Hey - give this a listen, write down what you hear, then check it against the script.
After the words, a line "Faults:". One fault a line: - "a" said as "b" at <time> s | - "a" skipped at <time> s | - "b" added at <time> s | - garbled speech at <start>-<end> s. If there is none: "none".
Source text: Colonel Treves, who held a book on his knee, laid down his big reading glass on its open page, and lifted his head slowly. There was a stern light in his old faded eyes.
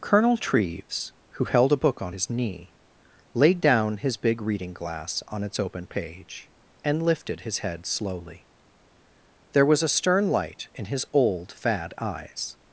Colonel Treves, who held a book on his knee, laid down his big reading glass on its open page, and lifted his head slowly. There was a stern light in his old fad eyes.
Faults:
- "faded" said as "fad" at 11.5 s